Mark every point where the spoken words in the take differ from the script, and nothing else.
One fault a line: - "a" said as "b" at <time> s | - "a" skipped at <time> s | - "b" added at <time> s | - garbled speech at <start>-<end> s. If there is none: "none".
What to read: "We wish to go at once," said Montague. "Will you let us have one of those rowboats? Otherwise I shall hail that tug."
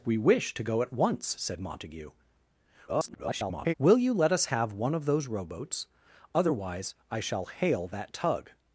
- garbled speech at 2.9-3.7 s